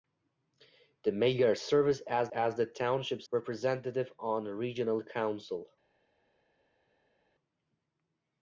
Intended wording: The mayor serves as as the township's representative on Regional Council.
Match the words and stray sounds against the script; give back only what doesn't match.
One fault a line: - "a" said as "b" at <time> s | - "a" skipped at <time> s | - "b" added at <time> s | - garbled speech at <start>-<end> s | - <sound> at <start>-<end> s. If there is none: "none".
none